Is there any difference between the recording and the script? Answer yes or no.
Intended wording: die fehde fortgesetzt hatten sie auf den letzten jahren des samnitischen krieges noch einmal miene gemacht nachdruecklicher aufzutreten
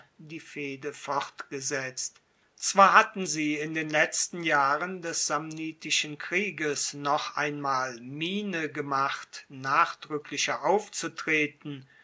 yes